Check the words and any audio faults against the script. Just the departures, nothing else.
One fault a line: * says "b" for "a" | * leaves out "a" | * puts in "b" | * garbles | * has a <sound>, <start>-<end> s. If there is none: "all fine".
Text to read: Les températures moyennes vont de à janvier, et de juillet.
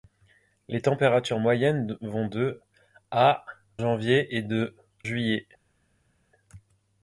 all fine